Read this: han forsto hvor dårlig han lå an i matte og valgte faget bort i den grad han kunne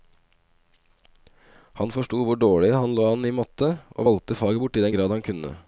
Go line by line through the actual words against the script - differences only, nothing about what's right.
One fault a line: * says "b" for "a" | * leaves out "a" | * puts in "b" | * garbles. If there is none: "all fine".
all fine